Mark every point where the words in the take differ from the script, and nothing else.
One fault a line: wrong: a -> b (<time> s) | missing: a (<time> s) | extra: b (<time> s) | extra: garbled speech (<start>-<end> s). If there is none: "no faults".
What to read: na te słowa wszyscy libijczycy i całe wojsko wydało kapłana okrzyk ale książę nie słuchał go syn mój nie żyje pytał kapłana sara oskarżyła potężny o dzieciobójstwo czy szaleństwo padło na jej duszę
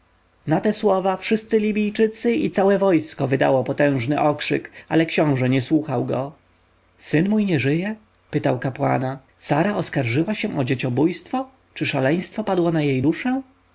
wrong: kapłana -> potężny (3.6 s)
wrong: potężny -> się (10.3 s)